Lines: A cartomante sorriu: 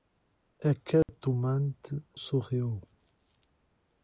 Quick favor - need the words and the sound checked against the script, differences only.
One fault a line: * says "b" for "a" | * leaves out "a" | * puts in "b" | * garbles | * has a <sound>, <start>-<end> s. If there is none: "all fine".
* has a dropout, 1.0-1.1 s